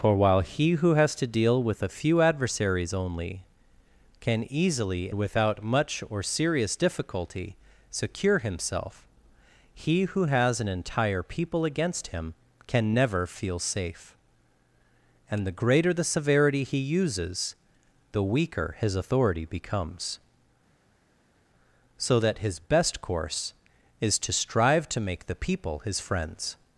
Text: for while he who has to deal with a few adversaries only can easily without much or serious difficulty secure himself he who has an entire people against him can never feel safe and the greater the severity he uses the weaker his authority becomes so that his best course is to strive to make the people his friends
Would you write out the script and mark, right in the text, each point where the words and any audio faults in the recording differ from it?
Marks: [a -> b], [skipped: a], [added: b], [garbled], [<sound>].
for while he who has to deal with a few adversaries only can easily without much or serious difficulty secure himself he who has an entire people against him can never feel safe and the greater the severity he uses the weaker his authority becomes so that his best course is to strive to make the people his friends